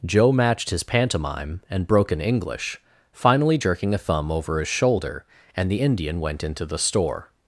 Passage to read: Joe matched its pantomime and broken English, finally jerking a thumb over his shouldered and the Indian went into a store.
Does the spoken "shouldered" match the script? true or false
false